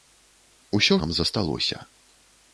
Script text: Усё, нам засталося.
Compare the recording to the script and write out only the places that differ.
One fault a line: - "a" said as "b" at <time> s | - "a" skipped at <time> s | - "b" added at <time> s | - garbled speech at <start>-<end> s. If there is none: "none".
none